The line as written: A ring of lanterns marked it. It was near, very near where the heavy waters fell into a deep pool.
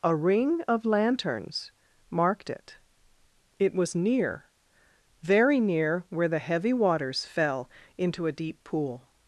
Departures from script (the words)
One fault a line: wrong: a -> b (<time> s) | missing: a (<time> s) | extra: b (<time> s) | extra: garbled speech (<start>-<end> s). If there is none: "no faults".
no faults